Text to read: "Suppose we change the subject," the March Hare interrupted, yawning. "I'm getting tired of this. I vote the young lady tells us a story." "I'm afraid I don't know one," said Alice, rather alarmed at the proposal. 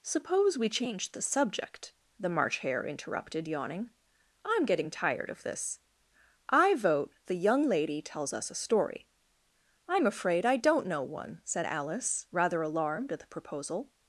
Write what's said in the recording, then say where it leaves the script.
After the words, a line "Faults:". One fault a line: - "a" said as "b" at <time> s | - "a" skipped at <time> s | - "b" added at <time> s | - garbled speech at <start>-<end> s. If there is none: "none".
"Suppose we change the subject," the March Hare interrupted, yawning. "I'm getting tired of this. I vote the young lady tells us a story." "I'm afraid I don't know one," said Alice, rather alarmed at the proposal.
Faults:
none